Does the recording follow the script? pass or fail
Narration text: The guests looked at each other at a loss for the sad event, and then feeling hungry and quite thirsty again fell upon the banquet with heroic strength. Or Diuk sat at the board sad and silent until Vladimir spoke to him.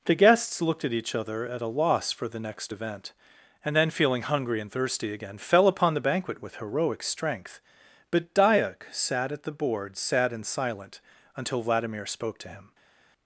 fail